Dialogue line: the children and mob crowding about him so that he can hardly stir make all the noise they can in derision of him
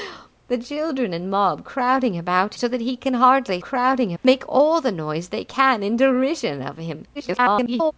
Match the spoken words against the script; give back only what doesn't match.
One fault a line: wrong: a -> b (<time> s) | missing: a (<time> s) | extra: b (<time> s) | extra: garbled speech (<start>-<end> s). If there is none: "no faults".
missing: him (2.5 s)
wrong: stir -> crowding (3.6 s)
extra: garbled speech (7.1-7.9 s)